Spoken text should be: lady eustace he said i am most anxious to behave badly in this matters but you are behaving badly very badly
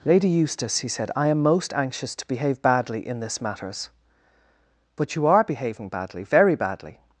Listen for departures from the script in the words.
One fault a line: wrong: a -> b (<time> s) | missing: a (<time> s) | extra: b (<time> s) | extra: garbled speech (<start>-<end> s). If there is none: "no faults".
no faults